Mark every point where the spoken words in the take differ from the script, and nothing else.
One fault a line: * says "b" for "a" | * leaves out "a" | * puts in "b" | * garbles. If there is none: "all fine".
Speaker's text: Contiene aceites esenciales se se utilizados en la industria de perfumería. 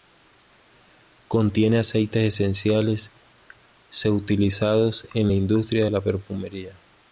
* leaves out "se"
* puts in "la"